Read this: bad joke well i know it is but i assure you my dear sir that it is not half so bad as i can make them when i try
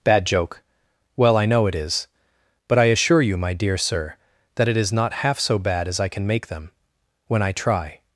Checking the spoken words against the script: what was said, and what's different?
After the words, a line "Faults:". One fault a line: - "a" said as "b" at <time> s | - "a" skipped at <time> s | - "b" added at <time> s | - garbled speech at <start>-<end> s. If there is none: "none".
bad joke well i know it is but i assure you my dear sir that it is not half so bad as i can make them when i try
Faults:
none